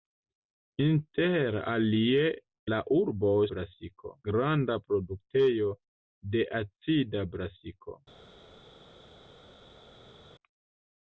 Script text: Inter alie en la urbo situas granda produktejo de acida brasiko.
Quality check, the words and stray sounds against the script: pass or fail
fail